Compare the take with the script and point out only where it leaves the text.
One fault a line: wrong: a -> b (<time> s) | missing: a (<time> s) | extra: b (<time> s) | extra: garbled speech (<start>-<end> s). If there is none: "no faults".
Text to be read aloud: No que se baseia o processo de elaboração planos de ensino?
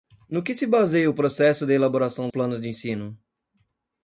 no faults